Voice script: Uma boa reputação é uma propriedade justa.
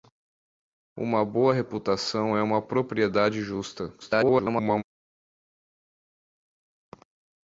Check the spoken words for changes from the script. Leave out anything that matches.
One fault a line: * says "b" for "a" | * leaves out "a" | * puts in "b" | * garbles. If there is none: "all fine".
* garbles